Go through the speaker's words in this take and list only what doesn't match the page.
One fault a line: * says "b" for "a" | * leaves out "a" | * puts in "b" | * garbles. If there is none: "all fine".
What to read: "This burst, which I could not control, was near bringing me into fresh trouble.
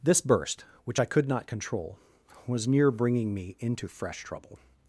all fine